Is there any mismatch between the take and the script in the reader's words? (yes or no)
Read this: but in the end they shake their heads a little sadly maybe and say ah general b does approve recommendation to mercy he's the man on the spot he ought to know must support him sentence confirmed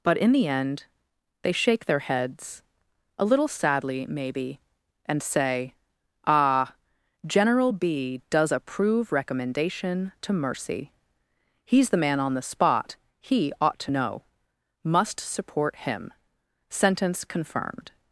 no